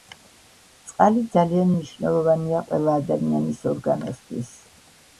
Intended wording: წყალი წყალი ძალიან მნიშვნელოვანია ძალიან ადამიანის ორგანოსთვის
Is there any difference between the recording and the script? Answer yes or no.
yes